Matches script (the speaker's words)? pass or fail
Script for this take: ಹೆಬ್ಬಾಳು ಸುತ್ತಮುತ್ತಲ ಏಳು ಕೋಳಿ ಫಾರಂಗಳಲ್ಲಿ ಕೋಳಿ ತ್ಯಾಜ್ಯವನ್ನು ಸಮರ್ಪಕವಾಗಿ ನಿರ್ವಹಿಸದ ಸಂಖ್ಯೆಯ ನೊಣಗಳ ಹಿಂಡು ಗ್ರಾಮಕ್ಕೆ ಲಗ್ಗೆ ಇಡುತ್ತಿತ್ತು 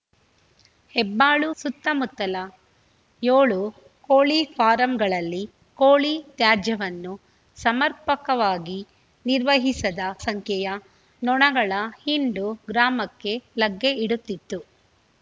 pass